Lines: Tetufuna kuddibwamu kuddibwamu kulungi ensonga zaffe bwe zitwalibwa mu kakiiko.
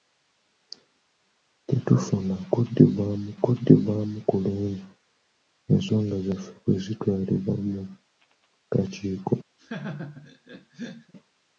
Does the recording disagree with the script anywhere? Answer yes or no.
no